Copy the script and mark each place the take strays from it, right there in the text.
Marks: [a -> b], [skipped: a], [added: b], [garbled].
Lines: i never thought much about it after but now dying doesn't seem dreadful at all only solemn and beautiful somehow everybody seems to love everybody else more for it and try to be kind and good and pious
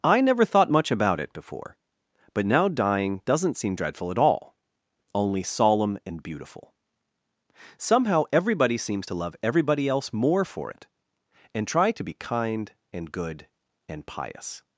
i never thought much about it [after -> before] but now dying doesn't seem dreadful at all only solemn and beautiful somehow everybody seems to love everybody else more for it and try to be kind and good and pious